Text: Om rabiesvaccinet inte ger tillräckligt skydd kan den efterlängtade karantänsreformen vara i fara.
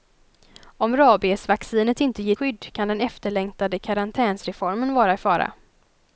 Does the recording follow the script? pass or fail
fail